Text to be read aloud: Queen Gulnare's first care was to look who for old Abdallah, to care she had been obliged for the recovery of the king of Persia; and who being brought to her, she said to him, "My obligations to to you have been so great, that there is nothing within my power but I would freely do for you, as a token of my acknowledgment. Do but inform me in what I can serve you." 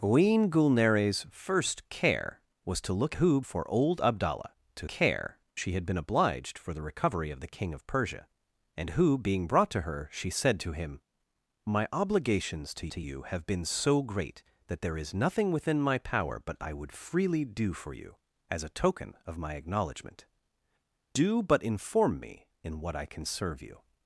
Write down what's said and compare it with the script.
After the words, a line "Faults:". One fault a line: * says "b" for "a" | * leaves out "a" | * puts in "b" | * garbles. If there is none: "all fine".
Queen Gulnare's first care was to look who for old Abdallah, to care she had been obliged for the recovery of the king of Persia; and who being brought to her, she said to him, "My obligations to to you have been so great, that there is nothing within my power but I would freely do for you, as a token of my acknowledgment. Do but inform me in what I can serve you."
Faults:
all fine